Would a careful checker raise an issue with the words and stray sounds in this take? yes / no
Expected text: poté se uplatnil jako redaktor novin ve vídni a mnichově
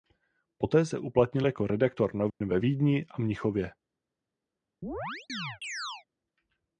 yes